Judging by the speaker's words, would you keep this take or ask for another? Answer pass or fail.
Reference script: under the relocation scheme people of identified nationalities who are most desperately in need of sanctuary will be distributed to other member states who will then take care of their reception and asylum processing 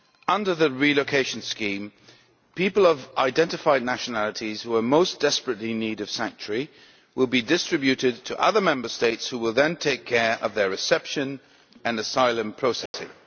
pass